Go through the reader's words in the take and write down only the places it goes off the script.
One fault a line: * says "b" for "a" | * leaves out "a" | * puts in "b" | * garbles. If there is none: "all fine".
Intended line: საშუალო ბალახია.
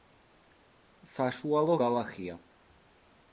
all fine